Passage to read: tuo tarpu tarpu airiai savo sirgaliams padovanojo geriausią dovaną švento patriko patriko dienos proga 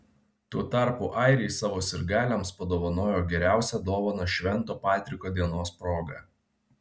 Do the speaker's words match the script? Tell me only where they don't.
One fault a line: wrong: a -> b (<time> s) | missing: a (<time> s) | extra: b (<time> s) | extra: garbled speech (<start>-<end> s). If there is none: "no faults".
missing: tarpu (1.1 s)
missing: patriko (5.3 s)